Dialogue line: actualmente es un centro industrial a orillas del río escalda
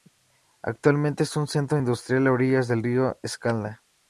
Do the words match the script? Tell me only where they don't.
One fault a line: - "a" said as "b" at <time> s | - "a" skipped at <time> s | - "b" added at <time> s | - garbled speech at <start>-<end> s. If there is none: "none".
none